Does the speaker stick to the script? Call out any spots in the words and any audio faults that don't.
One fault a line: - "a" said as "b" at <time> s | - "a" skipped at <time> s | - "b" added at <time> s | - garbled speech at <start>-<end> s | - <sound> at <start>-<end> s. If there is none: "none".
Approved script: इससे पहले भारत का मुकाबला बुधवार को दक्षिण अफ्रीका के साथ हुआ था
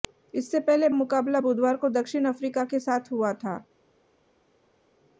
- "भारत का" skipped at 0.9 s